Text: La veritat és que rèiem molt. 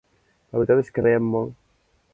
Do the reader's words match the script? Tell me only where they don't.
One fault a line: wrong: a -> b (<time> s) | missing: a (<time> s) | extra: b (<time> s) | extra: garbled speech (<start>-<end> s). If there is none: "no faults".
no faults